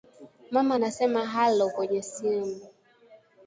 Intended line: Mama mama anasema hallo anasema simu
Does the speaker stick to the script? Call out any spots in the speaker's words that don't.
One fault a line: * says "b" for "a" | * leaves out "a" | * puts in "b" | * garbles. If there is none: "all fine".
* leaves out "mama"
* says "kwenye" for "anasema"